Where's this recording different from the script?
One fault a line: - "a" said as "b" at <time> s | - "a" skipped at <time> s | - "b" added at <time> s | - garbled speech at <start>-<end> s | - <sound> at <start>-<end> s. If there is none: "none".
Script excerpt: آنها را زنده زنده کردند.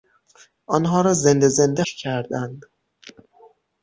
none